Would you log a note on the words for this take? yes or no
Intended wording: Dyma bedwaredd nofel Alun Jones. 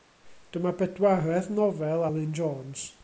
no